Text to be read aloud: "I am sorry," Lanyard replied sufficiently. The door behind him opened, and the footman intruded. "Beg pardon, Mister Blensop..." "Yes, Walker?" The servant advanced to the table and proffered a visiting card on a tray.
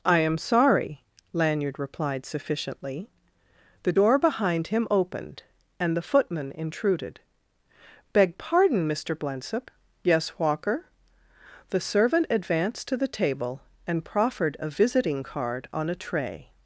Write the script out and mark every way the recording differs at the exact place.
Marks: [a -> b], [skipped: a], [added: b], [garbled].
"I am sorry," Lanyard replied sufficiently. The door behind him opened, and the footman intruded. "Beg pardon, Mister Blensop..." "Yes, Walker?" The servant advanced to the table and proffered a visiting card on a tray.